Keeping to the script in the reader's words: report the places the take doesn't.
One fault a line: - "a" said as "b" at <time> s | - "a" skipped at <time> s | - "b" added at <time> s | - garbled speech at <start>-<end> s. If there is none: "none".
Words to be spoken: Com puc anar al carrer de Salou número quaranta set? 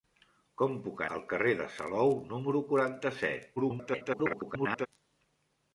- "anar" skipped at 1.0 s
- garbled speech at 3.6-4.9 s